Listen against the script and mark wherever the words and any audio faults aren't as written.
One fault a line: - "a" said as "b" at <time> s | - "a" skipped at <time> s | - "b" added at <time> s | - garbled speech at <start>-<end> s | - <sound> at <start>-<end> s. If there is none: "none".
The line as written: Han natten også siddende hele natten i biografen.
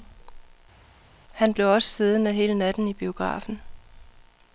- "natten" said as "blev" at 1.5 s